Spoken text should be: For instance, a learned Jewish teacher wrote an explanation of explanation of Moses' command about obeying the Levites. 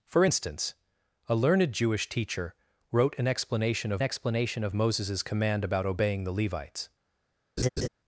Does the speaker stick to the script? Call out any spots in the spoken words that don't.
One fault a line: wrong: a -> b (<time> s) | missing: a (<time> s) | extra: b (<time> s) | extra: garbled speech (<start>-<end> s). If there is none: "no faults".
no faults